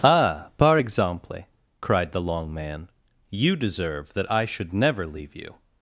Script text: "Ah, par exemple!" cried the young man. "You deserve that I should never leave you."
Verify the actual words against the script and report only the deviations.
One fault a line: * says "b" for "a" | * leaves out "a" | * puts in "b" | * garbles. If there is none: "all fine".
* says "long" for "young"